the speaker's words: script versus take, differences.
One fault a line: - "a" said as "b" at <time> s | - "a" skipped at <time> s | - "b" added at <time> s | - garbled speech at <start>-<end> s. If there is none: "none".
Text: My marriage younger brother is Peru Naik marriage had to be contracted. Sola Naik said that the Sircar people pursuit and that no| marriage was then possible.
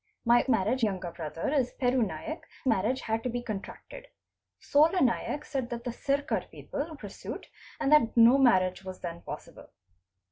none